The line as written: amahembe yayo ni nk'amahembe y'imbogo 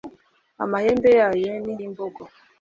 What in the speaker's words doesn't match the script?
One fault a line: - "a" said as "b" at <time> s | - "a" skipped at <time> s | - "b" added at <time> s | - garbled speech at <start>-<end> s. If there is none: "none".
- "nk'amahembe" skipped at 1.7 s